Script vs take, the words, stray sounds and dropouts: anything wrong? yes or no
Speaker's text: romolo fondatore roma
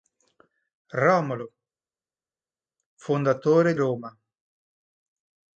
no